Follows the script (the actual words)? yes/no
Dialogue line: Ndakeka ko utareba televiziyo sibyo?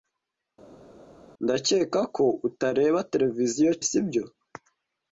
yes